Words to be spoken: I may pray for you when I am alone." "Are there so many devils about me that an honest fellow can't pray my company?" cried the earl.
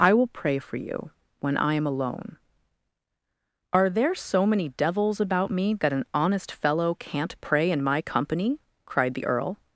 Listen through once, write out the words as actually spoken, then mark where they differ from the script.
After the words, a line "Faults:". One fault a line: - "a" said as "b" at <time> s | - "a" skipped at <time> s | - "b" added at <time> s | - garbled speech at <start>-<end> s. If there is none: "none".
I will pray for you when I am alone." "Are there so many devils about me that an honest fellow can't pray in my company?" cried the earl.
Faults:
- "may" said as "will" at 0.1 s
- "in" added at 7.7 s